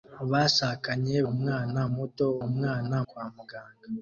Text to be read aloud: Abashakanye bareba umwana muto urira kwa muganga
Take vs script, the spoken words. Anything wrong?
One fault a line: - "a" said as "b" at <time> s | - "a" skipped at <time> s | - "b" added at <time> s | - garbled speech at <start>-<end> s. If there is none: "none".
- "bareba" skipped at 1.1 s
- "urira" said as "umwana" at 2.5 s